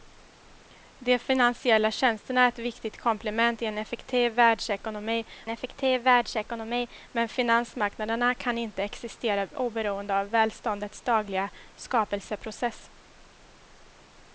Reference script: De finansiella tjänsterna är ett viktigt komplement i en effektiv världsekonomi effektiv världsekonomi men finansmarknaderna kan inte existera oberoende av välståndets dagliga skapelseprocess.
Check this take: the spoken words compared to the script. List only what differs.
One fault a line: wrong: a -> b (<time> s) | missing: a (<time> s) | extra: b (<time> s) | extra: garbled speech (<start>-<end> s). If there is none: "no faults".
no faults